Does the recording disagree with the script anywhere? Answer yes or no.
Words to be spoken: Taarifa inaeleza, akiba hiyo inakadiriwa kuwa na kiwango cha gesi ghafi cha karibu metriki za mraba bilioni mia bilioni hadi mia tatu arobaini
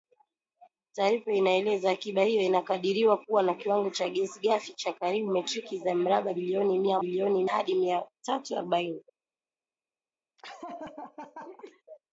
no